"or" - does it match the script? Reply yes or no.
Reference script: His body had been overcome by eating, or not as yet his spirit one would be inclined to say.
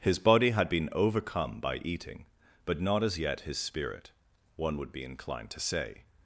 no